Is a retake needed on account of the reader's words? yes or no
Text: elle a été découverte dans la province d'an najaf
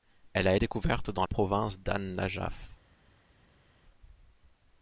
yes